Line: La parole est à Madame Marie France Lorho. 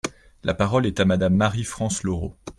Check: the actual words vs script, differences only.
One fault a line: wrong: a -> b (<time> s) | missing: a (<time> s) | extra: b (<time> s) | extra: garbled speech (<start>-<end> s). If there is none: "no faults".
no faults